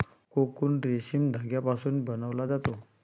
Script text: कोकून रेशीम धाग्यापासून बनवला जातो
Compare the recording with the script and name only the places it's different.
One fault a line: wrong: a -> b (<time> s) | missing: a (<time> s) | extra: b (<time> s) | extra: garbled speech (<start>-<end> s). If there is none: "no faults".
no faults